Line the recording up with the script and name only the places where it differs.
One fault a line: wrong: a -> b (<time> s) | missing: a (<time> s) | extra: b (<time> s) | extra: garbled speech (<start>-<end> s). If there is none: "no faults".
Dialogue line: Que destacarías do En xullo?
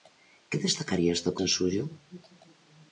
no faults